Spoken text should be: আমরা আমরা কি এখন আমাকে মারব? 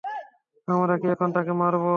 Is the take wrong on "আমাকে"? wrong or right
wrong